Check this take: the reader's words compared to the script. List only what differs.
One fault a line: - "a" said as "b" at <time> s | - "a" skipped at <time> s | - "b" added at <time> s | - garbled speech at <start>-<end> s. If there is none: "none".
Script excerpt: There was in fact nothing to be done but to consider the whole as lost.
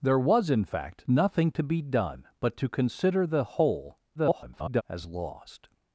- garbled speech at 4.1-4.8 s